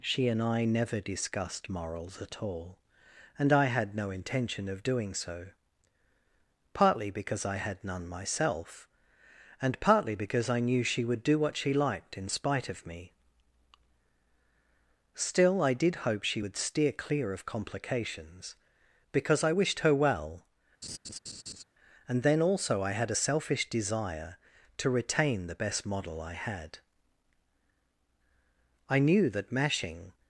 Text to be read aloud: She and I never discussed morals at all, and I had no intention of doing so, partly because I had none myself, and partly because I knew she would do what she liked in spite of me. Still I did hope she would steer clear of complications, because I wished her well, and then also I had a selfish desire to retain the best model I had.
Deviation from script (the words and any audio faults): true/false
true